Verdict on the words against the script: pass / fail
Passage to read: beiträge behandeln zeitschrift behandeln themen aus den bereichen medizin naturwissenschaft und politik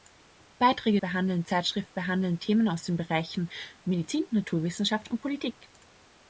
pass